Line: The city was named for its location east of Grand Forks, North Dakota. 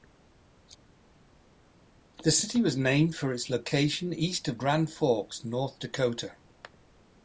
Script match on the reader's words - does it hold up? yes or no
yes